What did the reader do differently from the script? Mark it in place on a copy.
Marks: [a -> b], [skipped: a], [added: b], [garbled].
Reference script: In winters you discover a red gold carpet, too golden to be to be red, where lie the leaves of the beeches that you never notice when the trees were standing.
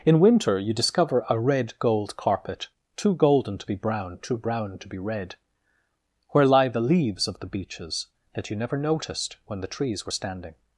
In [winters -> winter] you discover a red gold carpet, too golden to be [added: brown too brown] to be red, where lie the leaves of the beeches that you never [notice -> noticed] when the trees were standing.